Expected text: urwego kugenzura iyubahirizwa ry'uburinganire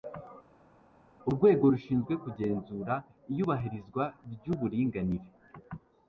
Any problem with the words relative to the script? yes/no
yes